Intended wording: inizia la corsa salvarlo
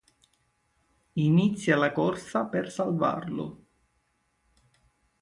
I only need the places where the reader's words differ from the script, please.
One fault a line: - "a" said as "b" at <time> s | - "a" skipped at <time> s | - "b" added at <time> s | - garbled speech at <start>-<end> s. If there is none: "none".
- "per" added at 2.4 s